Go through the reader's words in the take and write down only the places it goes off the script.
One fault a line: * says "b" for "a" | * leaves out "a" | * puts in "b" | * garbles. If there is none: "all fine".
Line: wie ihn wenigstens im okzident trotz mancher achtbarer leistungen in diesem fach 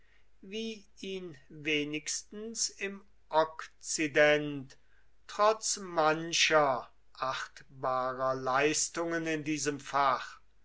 all fine